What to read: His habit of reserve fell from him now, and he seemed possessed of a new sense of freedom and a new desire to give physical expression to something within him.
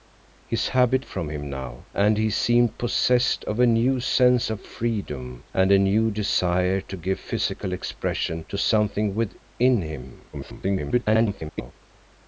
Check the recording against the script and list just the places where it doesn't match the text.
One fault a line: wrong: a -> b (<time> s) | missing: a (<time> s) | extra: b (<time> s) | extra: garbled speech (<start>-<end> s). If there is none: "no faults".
missing: of reserve fell (1.1 s)
extra: garbled speech (10.3-11.7 s)